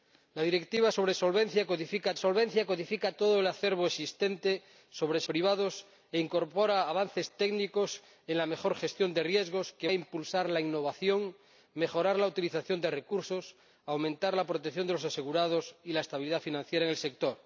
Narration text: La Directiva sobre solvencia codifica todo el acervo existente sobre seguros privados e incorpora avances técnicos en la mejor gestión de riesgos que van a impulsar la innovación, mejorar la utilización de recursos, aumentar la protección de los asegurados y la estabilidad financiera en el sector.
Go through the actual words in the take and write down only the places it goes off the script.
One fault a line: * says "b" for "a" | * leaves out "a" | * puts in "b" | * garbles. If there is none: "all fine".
* puts in "solvencia codifica"
* leaves out "seguros"
* leaves out "van"